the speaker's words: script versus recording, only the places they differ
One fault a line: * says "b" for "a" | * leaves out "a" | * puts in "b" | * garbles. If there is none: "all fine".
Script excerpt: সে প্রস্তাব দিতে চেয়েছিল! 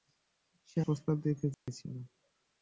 all fine